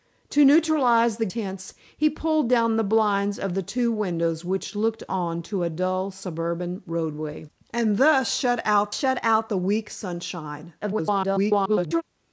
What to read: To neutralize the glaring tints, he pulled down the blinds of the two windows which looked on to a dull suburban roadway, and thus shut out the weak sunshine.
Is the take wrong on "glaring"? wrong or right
wrong